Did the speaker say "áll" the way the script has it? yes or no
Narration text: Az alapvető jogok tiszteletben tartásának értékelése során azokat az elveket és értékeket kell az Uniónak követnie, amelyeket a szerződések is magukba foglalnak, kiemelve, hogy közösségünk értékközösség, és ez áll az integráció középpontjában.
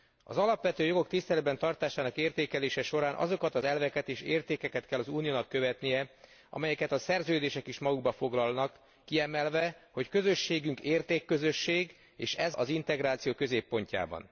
no